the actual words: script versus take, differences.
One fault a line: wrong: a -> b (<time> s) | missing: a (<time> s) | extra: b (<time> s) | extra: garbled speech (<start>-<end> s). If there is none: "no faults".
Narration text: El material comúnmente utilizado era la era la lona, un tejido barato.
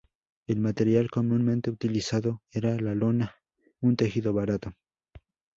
missing: era la (2.9 s)